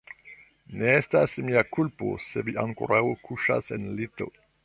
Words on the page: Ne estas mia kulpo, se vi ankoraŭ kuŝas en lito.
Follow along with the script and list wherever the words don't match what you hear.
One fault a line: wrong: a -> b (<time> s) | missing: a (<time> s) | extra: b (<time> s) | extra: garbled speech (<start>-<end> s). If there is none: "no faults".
no faults